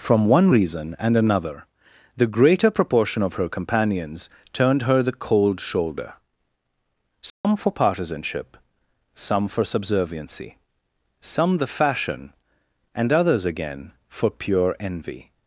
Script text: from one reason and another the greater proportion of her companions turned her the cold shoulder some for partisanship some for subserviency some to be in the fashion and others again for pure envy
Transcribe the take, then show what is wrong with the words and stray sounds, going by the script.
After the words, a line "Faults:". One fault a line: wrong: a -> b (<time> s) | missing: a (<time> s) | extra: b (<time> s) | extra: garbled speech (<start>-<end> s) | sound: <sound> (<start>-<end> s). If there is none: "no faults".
from one reason and another the greater proportion of her companions turned her the cold shoulder some for partisanship some for subserviency some the fashion and others again for pure envy
Faults:
sound: dropout (7.3-7.4 s)
missing: to be in (11.6 s)